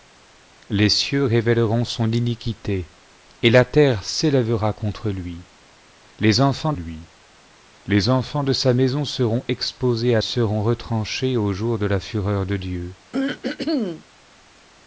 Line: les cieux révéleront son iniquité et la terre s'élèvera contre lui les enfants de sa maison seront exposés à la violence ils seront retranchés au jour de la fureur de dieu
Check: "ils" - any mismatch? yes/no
yes